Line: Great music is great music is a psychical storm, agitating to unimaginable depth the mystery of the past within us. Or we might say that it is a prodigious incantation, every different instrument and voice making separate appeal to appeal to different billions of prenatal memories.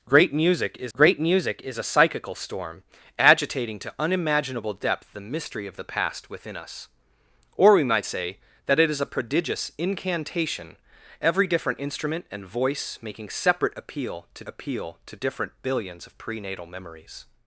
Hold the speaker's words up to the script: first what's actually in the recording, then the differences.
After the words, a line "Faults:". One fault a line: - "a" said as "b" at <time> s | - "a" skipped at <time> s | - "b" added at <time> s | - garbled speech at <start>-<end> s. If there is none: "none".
Great music is great music is a psychical storm, agitating to unimaginable depth the mystery of the past within us. Or we might say that it is a prodigious incantation, every different instrument and voice making separate appeal to appeal to different billions of prenatal memories.
Faults:
none